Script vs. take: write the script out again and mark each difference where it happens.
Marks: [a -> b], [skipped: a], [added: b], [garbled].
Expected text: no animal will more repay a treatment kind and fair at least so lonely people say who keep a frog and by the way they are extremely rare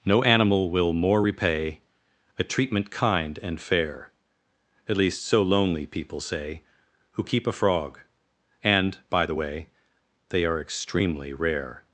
no animal will more repay a treatment kind and fair at least so lonely people say who keep a frog and by the way they are extremely rare